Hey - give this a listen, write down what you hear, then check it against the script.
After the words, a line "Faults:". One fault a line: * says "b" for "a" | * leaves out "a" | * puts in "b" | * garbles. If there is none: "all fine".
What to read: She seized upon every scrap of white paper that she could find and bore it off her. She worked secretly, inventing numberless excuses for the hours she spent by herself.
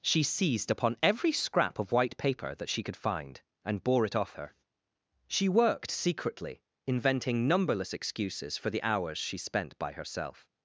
She seized upon every scrap of white paper that she could find and bore it off her. She worked secretly, inventing numberless excuses for the hours she spent by herself.
Faults:
all fine